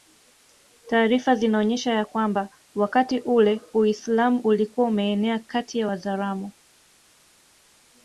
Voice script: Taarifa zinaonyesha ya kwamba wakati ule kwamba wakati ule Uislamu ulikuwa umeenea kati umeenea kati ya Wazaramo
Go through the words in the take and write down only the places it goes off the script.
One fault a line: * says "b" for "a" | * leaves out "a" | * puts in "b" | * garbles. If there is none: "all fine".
* leaves out "kwamba wakati ule"
* leaves out "umeenea kati"